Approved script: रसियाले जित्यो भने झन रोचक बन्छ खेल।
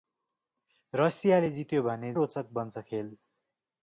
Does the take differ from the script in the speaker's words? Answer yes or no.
yes